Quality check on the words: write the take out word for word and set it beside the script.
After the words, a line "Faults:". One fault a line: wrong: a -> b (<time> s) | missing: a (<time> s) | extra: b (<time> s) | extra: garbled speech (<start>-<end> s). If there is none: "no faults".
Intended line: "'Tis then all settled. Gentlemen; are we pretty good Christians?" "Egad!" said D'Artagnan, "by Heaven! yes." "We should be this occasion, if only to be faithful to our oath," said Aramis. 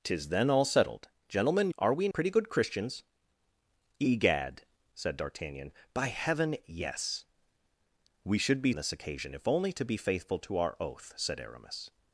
"'Tis then all settled. Gentlemen; are we pretty good Christians?" "Egad!" said D'Artagnan, "by Heaven! yes." "We should be this occasion, if only to be faithful to our oath," said Aramis.
Faults:
no faults